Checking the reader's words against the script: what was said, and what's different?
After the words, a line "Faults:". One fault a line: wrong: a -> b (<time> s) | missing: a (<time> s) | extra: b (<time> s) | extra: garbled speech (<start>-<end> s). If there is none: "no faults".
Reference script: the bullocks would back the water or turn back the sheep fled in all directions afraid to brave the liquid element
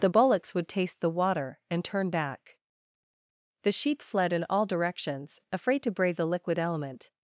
the bullocks would taste the water and turn back the sheep fled in all directions afraid to brave the liquid element
Faults:
wrong: back -> taste (0.7 s)
wrong: or -> and (1.7 s)